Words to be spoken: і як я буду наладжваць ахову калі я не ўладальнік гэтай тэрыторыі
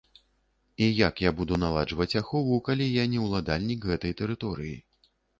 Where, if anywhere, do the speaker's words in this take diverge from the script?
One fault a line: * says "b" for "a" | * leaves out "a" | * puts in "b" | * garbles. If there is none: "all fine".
all fine